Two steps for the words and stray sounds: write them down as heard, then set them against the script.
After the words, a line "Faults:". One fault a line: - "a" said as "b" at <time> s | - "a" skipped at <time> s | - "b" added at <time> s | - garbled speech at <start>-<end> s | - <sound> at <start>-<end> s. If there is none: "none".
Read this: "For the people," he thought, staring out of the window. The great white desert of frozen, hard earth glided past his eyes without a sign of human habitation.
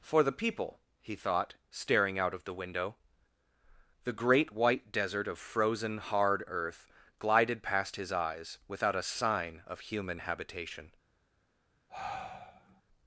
"For the people," he thought, staring out of the window. The great white desert of frozen, hard earth glided past his eyes without a sign of human habitation.
Faults:
- sigh at 11.9-12.8 s